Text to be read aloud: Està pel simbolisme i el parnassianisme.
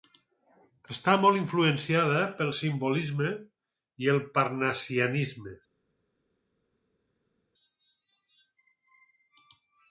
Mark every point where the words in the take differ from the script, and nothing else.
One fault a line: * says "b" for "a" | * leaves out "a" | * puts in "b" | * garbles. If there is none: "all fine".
* puts in "molt influenciada"